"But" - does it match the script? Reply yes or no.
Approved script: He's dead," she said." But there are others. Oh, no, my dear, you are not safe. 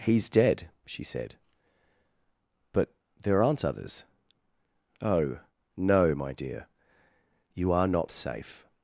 yes